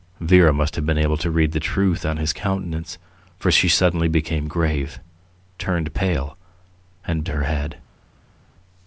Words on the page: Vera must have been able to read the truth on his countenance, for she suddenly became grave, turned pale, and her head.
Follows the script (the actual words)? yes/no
yes